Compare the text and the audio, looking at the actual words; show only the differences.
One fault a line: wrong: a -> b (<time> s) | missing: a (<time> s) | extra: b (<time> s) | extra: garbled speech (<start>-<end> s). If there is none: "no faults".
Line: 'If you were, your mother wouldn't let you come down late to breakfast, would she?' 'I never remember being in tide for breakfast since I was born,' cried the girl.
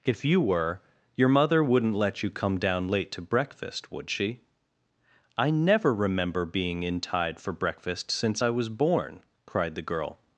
no faults